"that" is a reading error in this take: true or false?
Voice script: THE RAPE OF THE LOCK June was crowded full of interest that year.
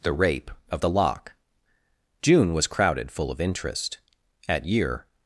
true